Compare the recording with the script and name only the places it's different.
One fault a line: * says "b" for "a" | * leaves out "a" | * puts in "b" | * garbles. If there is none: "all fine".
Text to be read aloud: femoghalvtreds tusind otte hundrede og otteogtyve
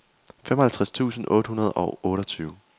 all fine